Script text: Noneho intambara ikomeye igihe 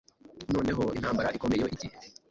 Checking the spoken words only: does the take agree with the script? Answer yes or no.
yes